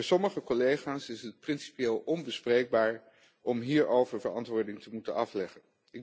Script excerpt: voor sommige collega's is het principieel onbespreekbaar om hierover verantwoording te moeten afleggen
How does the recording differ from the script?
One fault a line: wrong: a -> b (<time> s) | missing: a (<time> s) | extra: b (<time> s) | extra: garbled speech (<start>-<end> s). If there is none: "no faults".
no faults